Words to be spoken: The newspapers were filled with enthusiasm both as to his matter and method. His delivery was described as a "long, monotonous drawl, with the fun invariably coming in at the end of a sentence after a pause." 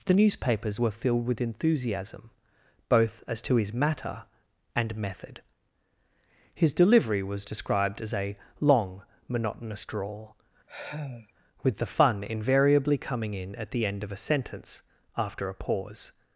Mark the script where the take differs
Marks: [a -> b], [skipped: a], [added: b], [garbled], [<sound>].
The newspapers were filled with enthusiasm both as to his matter and method. His delivery was described as a "long, monotonous drawl, [sigh] with the fun invariably coming in at the end of a sentence after a pause."